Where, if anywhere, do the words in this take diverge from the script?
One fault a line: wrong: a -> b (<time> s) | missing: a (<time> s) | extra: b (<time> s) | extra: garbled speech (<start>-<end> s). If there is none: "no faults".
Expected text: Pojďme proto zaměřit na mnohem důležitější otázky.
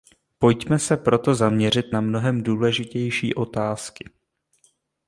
extra: se (0.8 s)